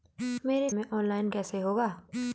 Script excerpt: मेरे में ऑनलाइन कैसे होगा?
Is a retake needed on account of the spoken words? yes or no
no